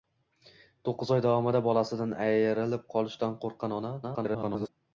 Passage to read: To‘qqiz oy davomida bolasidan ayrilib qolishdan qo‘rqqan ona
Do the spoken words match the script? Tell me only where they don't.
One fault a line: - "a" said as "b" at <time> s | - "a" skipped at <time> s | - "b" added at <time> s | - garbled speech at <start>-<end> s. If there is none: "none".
- garbled speech at 4.0-4.7 s